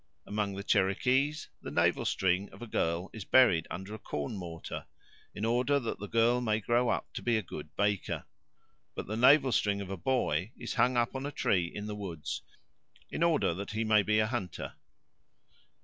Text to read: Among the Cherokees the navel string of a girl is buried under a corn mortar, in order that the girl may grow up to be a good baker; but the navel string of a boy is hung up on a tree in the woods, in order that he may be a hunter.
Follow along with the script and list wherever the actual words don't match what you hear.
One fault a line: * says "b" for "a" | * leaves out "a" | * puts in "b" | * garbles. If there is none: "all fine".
all fine